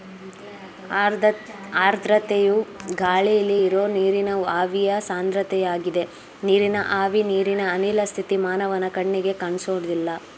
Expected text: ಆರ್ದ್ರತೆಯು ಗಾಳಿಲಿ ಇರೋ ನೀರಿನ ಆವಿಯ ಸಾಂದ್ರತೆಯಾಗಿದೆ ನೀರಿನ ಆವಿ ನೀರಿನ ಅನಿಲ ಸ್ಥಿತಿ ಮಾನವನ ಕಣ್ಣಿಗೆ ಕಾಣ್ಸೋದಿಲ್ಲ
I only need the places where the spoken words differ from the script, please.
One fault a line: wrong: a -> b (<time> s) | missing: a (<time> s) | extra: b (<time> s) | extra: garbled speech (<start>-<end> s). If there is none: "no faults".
no faults